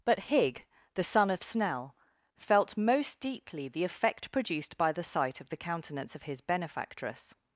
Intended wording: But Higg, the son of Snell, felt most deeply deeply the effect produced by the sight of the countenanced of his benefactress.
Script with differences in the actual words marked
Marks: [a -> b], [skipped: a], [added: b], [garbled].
But Higg, the son of Snell, felt most deeply [skipped: deeply] the effect produced by the sight of the [countenanced -> countenance] of his benefactress.